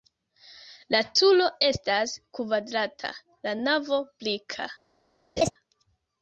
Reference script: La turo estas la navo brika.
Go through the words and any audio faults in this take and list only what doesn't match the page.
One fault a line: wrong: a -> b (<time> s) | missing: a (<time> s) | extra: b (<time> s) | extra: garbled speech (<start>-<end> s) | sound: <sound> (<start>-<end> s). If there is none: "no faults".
extra: kvadrata (2.4 s)
sound: laugh (5.4-5.5 s)